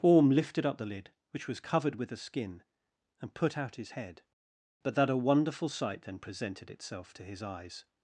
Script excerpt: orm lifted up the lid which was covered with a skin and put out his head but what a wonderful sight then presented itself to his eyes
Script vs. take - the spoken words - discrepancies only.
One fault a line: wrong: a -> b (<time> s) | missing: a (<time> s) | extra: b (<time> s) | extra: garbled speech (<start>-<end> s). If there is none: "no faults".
wrong: what -> that (4.9 s)